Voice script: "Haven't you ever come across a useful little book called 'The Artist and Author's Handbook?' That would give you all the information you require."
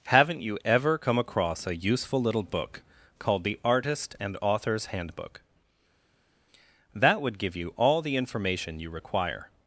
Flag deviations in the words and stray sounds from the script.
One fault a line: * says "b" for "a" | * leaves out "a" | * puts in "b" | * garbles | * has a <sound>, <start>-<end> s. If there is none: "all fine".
all fine